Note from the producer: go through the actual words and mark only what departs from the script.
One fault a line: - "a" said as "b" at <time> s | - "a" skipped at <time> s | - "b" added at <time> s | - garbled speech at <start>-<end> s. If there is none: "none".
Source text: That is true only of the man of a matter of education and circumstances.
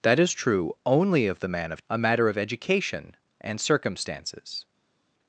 none